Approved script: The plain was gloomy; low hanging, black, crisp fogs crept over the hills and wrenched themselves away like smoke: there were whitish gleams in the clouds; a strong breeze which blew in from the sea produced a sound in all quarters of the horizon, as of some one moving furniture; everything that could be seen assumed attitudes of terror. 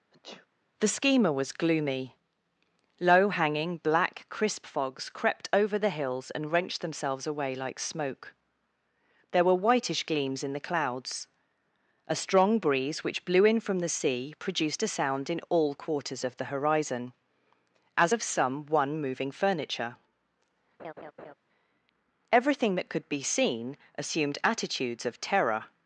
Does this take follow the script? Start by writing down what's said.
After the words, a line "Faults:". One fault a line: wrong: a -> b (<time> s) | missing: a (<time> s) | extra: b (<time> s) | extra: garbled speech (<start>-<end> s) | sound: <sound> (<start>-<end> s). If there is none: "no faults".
The schema was gloomy; low hanging, black, crisp fogs crept over the hills and wrenched themselves away like smoke: there were whitish gleams in the clouds; a strong breeze which blew in from the sea produced a sound in all quarters of the horizon, as of some one moving furniture; everything that could be seen assumed attitudes of terror.
Faults:
sound: sneeze (0.1-0.5 s)
wrong: plain -> schema (0.9 s)
sound: laugh (20.8-21.3 s)